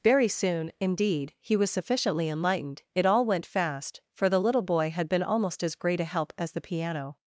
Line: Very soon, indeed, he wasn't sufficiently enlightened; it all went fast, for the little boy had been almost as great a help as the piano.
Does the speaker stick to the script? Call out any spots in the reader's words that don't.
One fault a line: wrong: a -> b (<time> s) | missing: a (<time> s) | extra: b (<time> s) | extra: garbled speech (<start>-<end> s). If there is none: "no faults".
wrong: wasn't -> was (1.6 s)